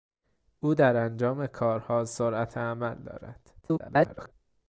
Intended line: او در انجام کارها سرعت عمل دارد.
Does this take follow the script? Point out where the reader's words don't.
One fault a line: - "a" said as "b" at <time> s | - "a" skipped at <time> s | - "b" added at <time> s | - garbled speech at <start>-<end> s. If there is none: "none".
- garbled speech at 3.6-4.3 s